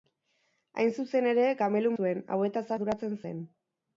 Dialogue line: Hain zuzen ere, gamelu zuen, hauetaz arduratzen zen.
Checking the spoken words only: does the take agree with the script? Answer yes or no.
yes